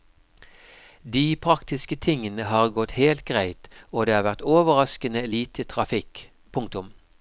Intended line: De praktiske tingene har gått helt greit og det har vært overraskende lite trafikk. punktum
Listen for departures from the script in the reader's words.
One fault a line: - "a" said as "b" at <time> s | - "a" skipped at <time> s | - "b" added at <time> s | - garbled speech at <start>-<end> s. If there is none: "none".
none